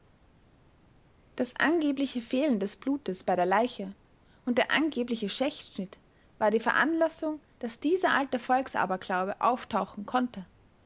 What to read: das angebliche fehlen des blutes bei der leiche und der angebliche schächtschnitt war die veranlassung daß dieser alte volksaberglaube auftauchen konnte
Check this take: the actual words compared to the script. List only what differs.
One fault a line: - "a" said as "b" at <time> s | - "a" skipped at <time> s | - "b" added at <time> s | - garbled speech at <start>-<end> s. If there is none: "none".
none